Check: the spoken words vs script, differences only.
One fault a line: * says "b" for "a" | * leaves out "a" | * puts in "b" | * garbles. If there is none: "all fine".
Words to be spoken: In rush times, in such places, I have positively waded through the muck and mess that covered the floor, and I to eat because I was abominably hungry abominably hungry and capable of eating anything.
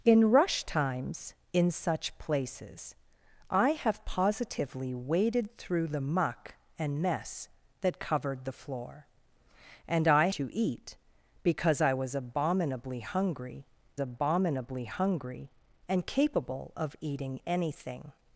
all fine